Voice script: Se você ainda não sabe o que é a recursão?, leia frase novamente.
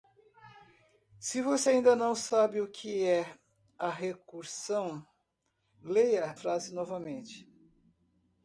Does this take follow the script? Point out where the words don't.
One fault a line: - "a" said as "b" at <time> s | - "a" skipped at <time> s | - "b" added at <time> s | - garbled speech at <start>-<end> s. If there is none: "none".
none